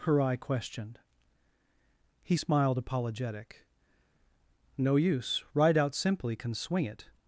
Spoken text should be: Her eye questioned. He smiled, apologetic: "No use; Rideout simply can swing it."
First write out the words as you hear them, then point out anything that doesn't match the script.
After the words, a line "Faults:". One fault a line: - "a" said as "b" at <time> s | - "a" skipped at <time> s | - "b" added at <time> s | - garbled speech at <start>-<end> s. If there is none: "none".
Her eye questioned. He smiled, apologetic: "No use; Rideout simply can swing it."
Faults:
none